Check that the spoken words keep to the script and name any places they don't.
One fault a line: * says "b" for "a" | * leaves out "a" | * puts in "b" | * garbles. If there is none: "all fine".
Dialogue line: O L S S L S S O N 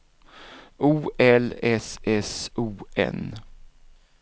* leaves out "L S S"